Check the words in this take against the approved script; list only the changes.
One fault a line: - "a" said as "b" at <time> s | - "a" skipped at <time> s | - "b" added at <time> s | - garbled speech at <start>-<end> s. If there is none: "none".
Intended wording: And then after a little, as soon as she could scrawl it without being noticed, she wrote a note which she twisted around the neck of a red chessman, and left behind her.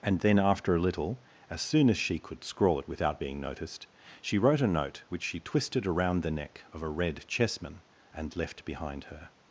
none